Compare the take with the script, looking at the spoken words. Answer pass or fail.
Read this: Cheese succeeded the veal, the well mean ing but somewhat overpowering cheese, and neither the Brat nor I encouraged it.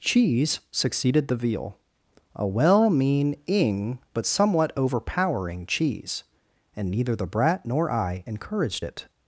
fail